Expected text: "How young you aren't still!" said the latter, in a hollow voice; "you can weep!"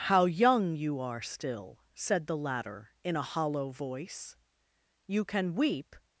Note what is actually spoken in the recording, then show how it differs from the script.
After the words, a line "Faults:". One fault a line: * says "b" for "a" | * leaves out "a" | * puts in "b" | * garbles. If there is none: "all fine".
"How young you are still!" said the latter, in a hollow voice; "you can weep!"
Faults:
* says "are" for "aren't"